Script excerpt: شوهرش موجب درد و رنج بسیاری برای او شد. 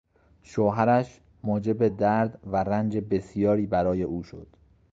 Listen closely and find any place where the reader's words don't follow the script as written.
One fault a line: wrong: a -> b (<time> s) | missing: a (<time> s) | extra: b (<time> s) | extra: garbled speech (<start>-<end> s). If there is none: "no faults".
no faults